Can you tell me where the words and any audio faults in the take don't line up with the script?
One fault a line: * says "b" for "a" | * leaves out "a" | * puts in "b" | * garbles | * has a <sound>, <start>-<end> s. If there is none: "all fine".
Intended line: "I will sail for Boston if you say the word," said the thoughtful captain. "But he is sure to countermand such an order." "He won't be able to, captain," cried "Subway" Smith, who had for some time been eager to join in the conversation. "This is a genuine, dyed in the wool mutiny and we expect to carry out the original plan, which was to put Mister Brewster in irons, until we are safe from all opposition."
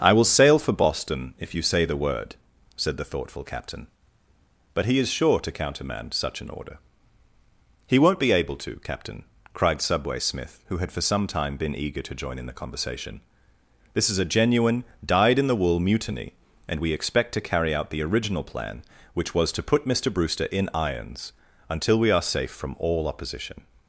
all fine